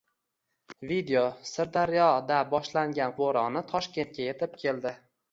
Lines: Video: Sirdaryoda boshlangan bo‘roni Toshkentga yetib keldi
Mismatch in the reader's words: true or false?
false